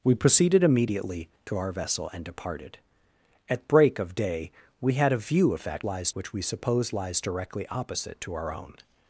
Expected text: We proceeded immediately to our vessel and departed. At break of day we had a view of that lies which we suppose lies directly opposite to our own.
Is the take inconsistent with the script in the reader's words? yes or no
no